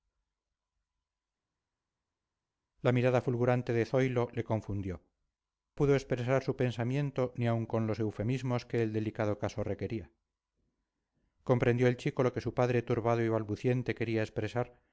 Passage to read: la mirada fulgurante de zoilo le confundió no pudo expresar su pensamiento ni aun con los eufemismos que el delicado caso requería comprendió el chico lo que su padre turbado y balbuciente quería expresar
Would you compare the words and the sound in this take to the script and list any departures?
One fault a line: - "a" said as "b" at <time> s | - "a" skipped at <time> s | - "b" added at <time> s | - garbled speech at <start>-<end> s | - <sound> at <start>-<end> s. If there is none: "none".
- "no" skipped at 5.0 s